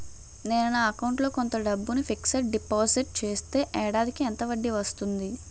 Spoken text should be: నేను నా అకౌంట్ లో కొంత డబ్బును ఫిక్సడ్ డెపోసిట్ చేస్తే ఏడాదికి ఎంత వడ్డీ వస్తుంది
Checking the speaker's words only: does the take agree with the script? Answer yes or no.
yes